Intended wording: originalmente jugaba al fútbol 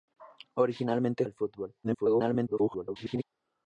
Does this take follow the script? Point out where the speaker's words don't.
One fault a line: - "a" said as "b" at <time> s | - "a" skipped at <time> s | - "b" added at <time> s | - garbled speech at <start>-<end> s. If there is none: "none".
- "jugaba" skipped at 1.2 s
- garbled speech at 1.8-3.2 s